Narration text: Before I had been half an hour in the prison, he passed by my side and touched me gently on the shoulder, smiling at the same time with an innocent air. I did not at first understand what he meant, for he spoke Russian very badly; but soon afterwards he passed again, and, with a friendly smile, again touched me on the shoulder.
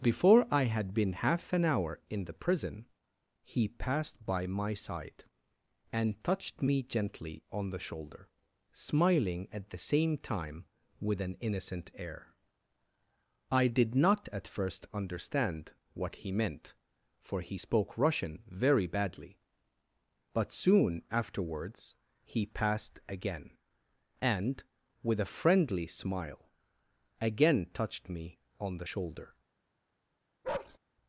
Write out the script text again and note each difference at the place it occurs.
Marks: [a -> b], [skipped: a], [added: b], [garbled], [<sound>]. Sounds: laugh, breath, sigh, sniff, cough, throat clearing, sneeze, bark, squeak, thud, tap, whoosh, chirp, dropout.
Before I had been half an hour in the prison, he passed by my side and touched me gently on the shoulder, smiling at the same time with an innocent air. I did not at first understand what he meant, for he spoke Russian very badly; but soon afterwards he passed again, and, with a friendly smile, again touched me on the shoulder. [bark]